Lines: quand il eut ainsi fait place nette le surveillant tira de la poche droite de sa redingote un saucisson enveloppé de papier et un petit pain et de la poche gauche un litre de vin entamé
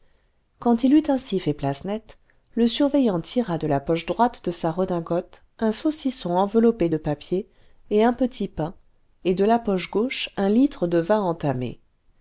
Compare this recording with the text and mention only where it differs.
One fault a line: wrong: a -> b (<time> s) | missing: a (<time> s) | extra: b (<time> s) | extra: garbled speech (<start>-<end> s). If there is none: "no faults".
no faults